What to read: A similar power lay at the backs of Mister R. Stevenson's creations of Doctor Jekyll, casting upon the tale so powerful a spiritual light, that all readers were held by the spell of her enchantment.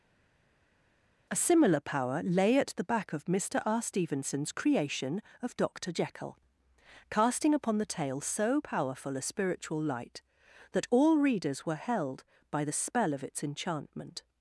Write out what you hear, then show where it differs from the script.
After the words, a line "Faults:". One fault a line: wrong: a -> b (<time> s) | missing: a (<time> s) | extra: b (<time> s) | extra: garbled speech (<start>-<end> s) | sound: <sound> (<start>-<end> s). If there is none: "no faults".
A similar power lay at the back of Mister R. Stevenson's creation of Doctor Jekyll, casting upon the tale so powerful a spiritual light, that all readers were held by the spell of its enchantment.
Faults:
wrong: backs -> back (2.8 s)
wrong: creations -> creation (4.5 s)
wrong: her -> its (13.2 s)